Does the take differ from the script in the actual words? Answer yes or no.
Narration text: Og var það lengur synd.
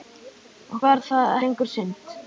no